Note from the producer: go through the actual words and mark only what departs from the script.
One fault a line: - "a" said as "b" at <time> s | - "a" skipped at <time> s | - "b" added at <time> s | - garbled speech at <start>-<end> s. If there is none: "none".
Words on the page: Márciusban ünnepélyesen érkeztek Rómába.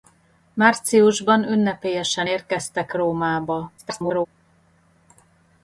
- garbled speech at 3.8-4.3 s